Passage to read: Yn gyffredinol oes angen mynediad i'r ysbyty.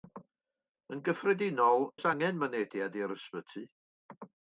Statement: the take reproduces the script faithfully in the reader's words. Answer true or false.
true